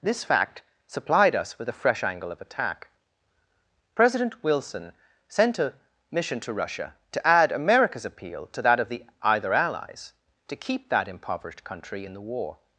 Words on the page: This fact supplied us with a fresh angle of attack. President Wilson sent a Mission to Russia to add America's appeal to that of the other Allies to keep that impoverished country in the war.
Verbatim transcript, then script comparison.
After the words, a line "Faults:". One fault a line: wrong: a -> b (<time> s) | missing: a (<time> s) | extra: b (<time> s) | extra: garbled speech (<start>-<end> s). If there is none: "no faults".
This fact supplied us with a fresh angle of attack. President Wilson sent a Mission to Russia to add America's appeal to that of the either Allies to keep that impoverished country in the war.
Faults:
wrong: other -> either (9.2 s)